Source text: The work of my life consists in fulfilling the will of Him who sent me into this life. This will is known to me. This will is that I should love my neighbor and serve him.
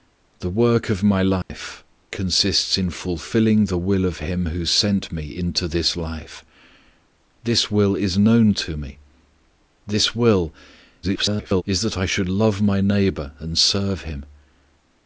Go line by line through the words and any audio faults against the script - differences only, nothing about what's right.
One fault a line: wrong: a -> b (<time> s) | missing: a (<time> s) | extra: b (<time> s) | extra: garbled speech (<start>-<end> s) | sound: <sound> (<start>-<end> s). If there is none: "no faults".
sound: dropout (1.4-1.5 s)
extra: garbled speech (11.0-11.6 s)